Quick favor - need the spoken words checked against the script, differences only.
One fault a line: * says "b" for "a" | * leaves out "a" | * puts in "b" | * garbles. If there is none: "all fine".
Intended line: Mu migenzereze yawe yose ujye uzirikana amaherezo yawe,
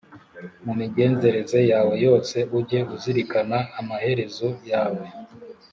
all fine